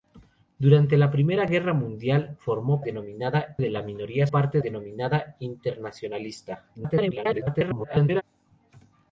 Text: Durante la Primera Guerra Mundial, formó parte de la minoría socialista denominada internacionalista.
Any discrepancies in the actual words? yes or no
yes